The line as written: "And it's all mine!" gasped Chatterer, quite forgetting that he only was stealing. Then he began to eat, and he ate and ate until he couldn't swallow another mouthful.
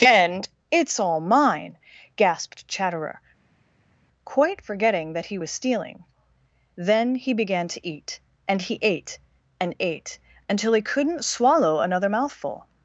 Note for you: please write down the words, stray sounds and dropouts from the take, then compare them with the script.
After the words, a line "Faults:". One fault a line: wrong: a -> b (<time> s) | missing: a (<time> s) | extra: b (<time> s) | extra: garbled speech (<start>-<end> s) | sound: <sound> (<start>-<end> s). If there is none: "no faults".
"And it's all mine!" gasped Chatterer, quite forgetting that he was stealing. Then he began to eat, and he ate and ate until he couldn't swallow another mouthful.
Faults:
missing: only (5.4 s)